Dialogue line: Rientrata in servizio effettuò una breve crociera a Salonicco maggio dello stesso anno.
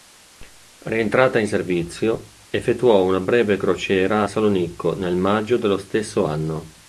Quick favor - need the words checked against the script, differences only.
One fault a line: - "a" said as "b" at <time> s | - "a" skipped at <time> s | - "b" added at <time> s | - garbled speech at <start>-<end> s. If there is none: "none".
- "nel" added at 4.9 s